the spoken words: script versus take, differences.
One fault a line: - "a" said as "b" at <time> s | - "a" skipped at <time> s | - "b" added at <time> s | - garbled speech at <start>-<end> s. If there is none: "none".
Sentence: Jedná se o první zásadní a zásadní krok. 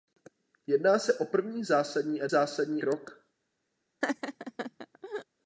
none